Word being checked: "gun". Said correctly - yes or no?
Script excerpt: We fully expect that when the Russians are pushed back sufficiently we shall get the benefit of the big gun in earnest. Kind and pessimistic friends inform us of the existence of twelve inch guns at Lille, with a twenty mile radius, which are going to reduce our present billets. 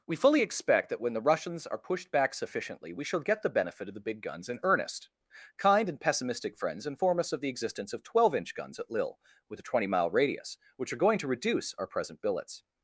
no